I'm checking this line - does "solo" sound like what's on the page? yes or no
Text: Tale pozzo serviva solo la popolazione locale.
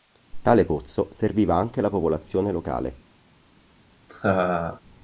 no